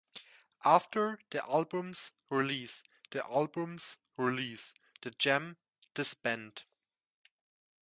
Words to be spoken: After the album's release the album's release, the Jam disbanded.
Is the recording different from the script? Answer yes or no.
no